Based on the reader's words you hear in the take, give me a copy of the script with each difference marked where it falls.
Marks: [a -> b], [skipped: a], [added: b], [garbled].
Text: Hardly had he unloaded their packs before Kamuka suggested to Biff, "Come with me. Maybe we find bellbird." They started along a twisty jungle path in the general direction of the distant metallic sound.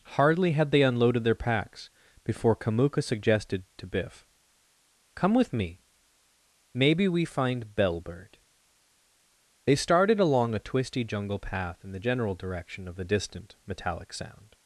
Hardly had [he -> they] unloaded their packs before Kamuka suggested to Biff, "Come with me. Maybe we find bellbird." They started along a twisty jungle path in the general direction of the distant metallic sound.